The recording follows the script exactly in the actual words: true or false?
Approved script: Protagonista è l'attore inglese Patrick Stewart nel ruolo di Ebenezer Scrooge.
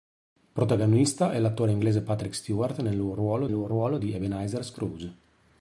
false